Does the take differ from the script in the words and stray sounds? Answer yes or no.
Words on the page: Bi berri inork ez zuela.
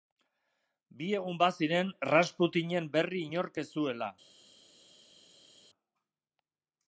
yes